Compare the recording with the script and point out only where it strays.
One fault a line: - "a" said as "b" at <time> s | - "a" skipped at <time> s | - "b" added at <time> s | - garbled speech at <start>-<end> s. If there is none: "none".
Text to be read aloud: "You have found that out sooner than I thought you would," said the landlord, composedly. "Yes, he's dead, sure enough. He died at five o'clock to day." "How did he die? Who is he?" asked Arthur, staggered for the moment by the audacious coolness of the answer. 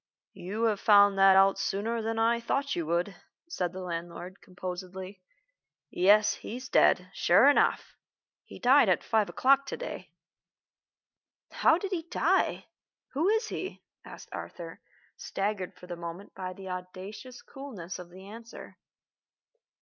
none